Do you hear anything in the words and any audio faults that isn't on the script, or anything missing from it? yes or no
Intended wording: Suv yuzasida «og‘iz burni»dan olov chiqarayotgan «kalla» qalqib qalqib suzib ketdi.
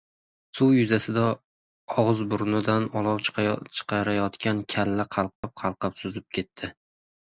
yes